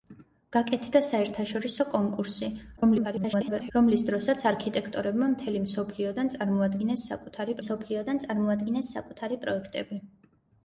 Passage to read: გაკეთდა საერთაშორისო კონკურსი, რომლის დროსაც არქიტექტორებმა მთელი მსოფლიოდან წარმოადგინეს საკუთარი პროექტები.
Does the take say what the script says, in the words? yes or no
no